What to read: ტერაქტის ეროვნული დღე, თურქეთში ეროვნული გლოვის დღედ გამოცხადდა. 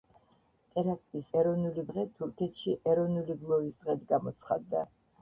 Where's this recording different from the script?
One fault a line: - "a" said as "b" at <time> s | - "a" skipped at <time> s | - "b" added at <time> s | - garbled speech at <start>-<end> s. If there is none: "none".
none